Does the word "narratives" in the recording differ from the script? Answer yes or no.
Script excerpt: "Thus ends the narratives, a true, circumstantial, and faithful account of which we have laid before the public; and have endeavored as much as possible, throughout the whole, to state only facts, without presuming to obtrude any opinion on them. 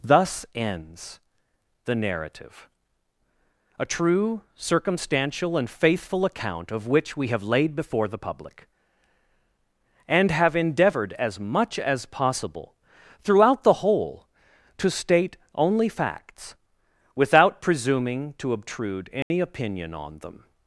yes